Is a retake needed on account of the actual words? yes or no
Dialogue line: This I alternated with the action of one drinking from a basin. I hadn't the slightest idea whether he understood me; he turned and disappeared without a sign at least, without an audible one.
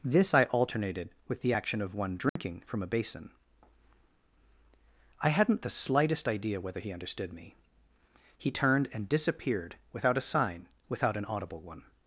yes